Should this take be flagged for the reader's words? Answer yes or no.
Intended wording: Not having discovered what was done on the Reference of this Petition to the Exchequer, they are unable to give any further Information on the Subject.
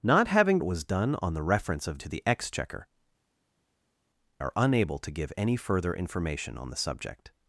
yes